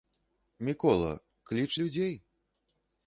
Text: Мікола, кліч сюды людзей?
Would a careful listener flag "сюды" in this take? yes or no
yes